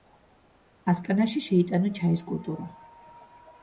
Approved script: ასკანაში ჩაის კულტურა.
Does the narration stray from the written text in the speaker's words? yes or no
yes